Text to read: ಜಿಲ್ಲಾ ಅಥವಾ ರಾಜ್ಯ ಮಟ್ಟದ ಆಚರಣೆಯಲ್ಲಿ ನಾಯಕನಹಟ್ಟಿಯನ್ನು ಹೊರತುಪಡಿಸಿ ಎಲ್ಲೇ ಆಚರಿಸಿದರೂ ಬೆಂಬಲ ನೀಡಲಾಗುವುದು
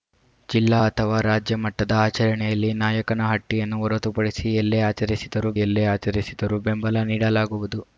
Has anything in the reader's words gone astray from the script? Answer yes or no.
yes